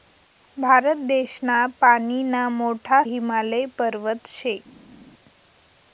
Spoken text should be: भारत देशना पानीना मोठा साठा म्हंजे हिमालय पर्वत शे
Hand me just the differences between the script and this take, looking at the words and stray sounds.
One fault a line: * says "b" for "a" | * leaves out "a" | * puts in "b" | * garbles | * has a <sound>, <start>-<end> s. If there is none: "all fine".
* leaves out "साठा म्हंजे"